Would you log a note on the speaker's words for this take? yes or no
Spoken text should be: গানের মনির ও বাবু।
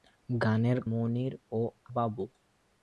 no